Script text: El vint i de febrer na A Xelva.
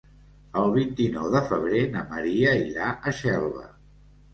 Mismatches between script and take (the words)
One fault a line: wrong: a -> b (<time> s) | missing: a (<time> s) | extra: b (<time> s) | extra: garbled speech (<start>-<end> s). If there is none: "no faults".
extra: nou (1.2 s)
extra: Maria irà (2.2 s)